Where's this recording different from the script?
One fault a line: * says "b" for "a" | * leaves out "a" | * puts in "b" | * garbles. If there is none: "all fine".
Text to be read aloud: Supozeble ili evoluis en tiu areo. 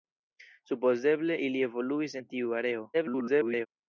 * garbles